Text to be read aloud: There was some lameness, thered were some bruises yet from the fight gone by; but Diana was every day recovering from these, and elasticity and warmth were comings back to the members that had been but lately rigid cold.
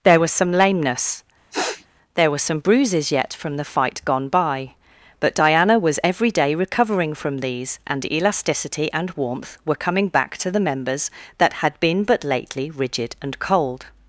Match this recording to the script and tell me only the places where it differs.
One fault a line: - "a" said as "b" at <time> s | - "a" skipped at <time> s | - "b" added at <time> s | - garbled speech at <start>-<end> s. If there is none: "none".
- "thered" said as "there" at 2.1 s
- "comings" said as "coming" at 9.7 s
- "and" added at 13.2 s